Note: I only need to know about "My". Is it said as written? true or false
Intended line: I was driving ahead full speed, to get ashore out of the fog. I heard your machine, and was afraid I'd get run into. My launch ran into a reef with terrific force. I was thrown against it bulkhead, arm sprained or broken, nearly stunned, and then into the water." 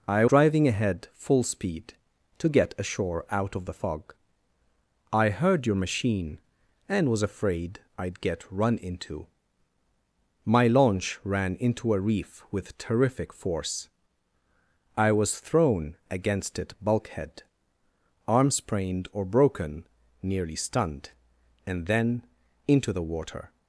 true